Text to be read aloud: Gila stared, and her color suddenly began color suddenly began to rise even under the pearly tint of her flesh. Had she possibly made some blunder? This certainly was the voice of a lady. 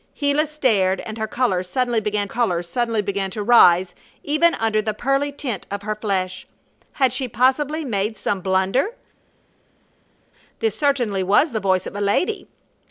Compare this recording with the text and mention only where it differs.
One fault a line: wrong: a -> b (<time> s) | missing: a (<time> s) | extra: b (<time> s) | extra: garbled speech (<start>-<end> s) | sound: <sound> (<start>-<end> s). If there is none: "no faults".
no faults